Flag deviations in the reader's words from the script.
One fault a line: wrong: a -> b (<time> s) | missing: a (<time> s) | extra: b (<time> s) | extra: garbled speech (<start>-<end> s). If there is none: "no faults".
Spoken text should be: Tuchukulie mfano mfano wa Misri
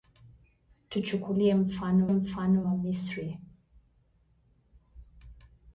no faults